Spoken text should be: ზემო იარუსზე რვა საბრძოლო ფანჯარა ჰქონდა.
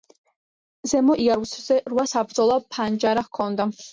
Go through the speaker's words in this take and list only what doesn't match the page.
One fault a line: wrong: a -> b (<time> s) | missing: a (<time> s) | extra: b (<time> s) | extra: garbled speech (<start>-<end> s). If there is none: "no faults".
no faults